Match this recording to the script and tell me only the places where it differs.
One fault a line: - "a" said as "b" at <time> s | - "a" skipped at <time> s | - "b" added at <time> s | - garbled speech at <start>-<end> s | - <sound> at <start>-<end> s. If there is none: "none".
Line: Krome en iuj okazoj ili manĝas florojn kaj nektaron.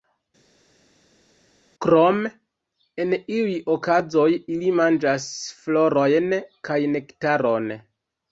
none